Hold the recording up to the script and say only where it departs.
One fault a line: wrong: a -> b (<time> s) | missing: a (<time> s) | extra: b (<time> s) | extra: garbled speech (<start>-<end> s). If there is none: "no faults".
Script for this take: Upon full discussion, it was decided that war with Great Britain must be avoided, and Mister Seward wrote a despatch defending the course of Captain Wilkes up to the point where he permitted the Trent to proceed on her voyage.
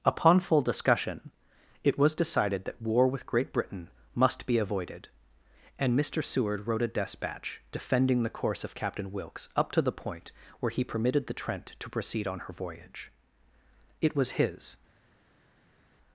extra: It was his (14.0 s)